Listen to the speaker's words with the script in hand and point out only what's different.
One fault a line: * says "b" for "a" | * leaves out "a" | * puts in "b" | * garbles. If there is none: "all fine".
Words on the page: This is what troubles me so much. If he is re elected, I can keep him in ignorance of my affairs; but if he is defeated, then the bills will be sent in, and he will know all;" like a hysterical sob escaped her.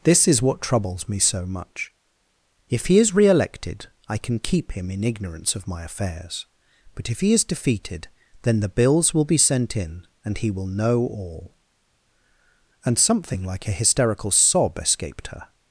* puts in "and something"